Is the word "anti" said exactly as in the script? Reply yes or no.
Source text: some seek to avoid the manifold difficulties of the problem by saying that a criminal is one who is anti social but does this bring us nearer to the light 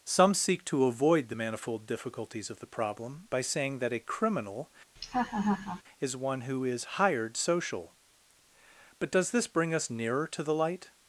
no